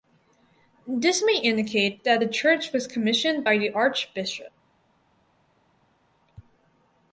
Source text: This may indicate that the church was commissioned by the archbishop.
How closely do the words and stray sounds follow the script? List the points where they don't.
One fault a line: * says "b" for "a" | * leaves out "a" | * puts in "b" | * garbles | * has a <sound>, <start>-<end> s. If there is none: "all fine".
all fine